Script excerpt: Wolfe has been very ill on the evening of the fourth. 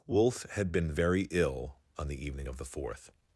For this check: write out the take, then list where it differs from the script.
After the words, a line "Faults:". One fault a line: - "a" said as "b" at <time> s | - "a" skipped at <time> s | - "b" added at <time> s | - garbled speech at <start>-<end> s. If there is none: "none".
Wolfe had been very ill on the evening of the fourth.
Faults:
- "has" said as "had" at 0.5 s